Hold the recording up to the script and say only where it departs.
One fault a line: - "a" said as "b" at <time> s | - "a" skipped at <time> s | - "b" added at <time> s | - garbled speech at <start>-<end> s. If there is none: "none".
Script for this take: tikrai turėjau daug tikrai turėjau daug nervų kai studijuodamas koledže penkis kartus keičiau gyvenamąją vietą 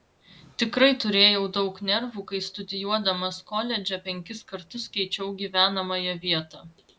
- "tikrai turėjau daug" skipped at 1.8 s